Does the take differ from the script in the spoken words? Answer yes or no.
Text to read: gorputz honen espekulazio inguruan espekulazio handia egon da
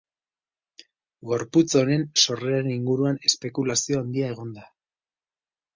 yes